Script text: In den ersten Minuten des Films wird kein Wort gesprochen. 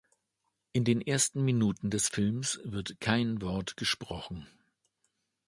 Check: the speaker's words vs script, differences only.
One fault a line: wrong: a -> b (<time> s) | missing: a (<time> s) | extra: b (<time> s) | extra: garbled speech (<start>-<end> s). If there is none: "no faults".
no faults